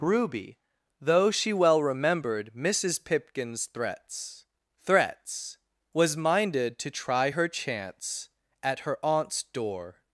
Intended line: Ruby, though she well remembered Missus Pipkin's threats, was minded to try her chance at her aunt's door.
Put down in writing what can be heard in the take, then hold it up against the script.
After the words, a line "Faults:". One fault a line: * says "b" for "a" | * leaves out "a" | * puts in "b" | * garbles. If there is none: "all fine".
Ruby, though she well remembered Missus Pipkin's threats threats, was minded to try her chance at her aunt's door.
Faults:
* puts in "threats"